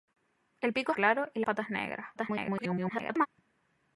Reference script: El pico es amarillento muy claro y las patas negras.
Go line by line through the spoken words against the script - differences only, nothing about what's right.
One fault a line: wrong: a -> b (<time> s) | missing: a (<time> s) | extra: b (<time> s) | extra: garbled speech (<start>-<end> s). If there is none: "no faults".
missing: es amarillento muy (0.9 s)
missing: las (1.4 s)
extra: garbled speech (2.2-3.3 s)